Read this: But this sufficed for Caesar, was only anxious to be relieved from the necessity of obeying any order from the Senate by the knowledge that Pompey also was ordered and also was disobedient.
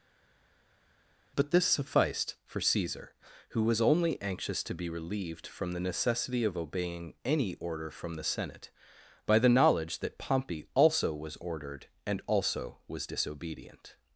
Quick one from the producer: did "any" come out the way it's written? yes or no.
yes